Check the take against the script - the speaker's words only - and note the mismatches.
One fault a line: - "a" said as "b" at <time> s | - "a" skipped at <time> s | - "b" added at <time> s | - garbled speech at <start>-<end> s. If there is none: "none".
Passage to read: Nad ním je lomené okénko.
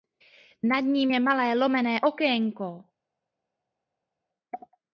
- "malé" added at 1.2 s